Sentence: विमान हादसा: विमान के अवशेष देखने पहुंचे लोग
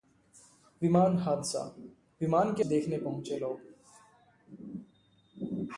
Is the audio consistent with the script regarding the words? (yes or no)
no